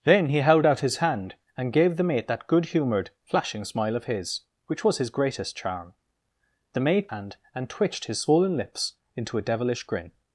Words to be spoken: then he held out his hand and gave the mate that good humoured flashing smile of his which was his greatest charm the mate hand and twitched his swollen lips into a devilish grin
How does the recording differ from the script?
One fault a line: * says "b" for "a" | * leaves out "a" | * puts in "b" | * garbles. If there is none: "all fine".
all fine